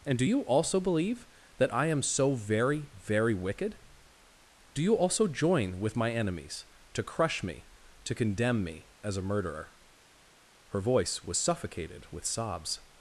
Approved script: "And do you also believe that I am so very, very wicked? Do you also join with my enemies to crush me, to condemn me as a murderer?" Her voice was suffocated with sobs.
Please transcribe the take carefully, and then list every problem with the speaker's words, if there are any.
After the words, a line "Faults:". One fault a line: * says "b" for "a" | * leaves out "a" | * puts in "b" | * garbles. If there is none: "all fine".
"And do you also believe that I am so very, very wicked? Do you also join with my enemies to crush me, to condemn me as a murderer?" Her voice was suffocated with sobs.
Faults:
all fine